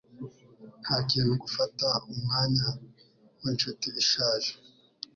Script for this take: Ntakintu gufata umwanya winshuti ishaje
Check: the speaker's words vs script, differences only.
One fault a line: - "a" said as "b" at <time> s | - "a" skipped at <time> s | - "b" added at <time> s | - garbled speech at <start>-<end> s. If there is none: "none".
none